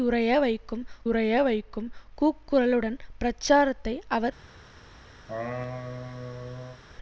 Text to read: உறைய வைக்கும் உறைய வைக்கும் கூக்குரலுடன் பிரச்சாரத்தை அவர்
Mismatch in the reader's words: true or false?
false